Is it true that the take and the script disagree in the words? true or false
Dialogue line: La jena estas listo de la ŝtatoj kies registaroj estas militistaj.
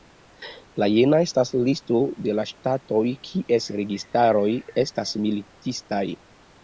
false